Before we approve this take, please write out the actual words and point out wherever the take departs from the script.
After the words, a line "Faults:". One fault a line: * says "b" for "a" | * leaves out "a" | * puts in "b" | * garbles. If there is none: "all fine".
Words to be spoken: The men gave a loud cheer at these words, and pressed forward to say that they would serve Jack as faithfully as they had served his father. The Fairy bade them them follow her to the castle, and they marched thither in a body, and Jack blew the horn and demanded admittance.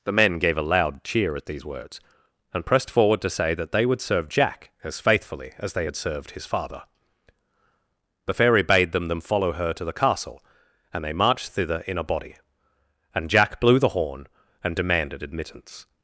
The men gave a loud cheer at these words, and pressed forward to say that they would serve Jack as faithfully as they had served his father. The Fairy bade them them follow her to the castle, and they marched thither in a body, and Jack blew the horn and demanded admittance.
Faults:
all fine